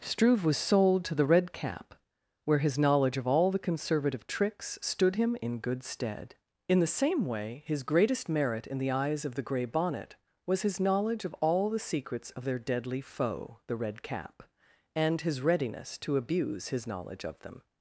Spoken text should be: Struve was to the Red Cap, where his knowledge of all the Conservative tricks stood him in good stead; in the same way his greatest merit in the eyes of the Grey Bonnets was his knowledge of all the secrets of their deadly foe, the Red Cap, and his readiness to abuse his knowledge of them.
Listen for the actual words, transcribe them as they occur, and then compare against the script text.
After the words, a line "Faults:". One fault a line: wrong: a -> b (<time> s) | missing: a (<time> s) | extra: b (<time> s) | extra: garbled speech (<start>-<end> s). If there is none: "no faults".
Struve was sold to the Red Cap, where his knowledge of all the Conservative tricks stood him in good stead; in the same way his greatest merit in the eyes of the Grey Bonnet was his knowledge of all the secrets of their deadly foe, the Red Cap, and his readiness to abuse his knowledge of them.
Faults:
extra: sold (0.6 s)
wrong: Bonnets -> Bonnet (9.6 s)